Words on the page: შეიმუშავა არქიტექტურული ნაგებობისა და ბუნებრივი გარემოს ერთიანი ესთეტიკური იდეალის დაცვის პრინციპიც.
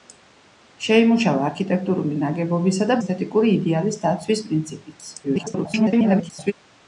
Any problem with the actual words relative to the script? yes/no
yes